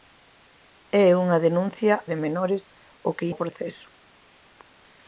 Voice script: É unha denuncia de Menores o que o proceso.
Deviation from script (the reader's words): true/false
false